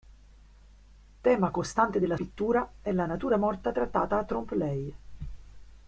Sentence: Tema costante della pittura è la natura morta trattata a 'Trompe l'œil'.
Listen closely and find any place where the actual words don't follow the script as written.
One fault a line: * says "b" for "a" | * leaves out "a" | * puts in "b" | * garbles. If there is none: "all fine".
all fine